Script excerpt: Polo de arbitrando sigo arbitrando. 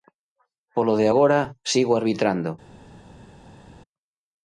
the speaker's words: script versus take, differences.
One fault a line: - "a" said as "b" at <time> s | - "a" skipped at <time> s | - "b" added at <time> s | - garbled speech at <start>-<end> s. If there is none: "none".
- "arbitrando" said as "agora" at 1.1 s